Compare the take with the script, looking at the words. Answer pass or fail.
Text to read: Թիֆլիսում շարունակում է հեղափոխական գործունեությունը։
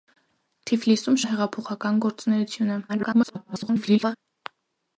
fail